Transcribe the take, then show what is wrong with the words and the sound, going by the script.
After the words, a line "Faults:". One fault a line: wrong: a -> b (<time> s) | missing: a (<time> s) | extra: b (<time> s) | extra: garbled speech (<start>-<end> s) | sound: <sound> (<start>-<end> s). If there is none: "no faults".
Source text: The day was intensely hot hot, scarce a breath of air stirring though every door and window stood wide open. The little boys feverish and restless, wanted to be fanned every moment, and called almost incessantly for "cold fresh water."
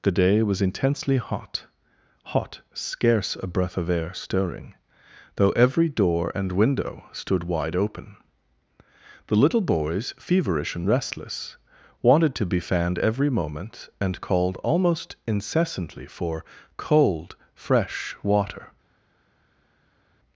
The day was intensely hot hot, scarce a breath of air stirring though every door and window stood wide open. The little boys feverish and restless, wanted to be fanned every moment, and called almost incessantly for "cold fresh water."
Faults:
no faults